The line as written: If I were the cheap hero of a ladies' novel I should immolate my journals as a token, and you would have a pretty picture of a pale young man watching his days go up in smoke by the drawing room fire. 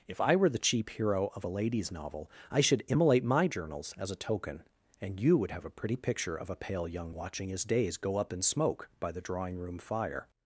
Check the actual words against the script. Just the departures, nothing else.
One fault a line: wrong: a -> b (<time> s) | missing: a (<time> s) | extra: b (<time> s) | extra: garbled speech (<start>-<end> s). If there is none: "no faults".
missing: man (7.2 s)